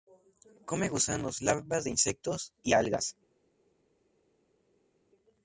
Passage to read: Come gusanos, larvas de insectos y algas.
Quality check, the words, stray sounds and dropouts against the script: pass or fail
pass